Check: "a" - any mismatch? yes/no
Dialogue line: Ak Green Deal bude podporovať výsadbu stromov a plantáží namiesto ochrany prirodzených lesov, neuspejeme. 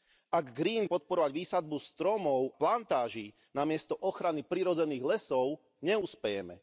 yes